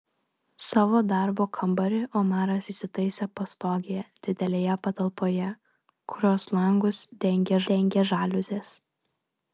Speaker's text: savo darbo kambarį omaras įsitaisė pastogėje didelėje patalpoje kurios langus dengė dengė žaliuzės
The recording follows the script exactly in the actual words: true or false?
true